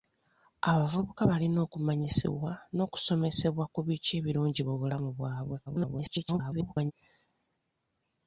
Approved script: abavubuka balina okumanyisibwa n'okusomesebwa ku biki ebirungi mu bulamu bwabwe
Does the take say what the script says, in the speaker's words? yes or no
no